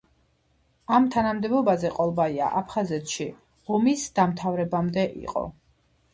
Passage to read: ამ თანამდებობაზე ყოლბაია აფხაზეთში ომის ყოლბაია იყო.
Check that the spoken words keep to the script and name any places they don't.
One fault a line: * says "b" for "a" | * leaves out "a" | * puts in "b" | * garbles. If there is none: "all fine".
* says "დამთავრებამდე" for "ყოლბაია"